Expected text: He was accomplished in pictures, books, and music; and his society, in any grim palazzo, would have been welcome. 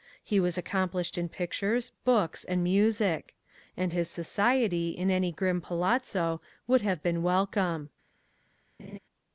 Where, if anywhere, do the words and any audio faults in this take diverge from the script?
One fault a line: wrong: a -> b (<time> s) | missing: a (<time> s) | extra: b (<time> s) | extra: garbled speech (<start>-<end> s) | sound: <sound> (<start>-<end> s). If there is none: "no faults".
sound: laugh (8.8-9.0 s)